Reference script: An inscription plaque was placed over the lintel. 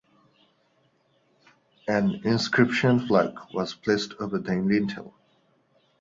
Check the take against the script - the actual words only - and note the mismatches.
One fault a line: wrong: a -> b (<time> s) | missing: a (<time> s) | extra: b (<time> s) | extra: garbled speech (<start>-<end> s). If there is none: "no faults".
no faults